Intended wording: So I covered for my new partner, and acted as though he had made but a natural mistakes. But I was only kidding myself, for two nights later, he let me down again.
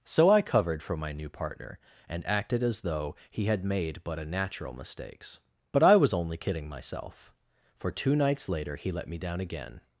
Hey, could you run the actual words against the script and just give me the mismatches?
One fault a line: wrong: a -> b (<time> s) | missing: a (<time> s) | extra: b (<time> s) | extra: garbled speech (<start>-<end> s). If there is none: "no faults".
no faults